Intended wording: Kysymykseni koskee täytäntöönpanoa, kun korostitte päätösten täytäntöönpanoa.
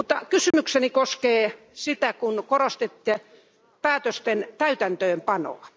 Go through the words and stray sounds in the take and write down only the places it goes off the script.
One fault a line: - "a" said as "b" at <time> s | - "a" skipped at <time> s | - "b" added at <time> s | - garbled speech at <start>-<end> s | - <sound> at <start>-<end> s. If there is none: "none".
- dropout at 0.5-0.5 s
- "täytäntöönpanoa" said as "sitä" at 1.7 s